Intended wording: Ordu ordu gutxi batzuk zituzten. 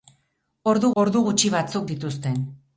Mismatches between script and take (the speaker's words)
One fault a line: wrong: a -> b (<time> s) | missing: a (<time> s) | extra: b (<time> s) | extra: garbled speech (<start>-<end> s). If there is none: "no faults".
no faults